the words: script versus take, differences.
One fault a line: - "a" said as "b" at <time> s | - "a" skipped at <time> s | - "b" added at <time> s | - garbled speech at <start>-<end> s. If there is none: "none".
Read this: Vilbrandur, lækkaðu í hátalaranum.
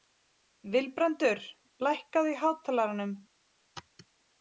none